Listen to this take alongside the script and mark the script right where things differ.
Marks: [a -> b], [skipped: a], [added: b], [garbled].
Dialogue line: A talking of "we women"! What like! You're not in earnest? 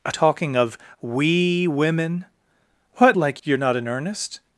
A talking of "we women"! What like! You're not in earnest?